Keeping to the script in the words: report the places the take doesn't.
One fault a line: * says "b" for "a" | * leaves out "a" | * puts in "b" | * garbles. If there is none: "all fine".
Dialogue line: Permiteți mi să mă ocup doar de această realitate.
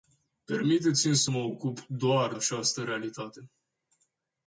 * leaves out "de"